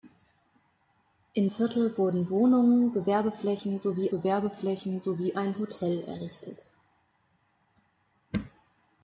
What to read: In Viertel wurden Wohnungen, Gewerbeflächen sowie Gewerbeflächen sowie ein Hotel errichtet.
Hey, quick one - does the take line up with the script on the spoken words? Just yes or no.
yes